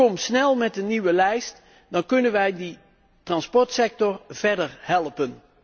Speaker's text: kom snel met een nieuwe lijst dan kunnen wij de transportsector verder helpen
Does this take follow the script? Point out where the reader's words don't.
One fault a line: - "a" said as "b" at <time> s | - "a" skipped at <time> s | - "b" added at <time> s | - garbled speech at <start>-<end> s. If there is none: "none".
none